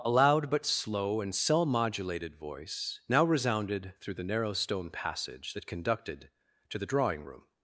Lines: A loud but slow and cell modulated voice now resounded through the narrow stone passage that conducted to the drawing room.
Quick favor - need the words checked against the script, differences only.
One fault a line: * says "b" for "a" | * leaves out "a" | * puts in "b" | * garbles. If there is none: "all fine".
all fine